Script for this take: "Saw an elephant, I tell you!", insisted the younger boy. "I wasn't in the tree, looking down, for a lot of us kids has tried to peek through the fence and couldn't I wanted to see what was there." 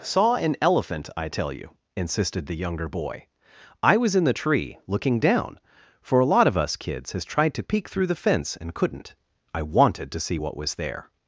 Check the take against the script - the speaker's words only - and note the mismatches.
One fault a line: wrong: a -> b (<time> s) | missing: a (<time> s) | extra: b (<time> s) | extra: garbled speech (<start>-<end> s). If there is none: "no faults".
wrong: wasn't -> was (4.0 s)